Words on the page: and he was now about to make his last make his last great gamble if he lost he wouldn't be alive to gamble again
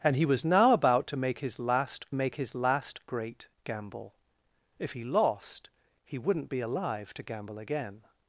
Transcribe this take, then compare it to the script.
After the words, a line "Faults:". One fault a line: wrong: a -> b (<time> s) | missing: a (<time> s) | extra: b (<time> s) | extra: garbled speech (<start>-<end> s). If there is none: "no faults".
and he was now about to make his last make his last great gamble if he lost he wouldn't be alive to gamble again
Faults:
no faults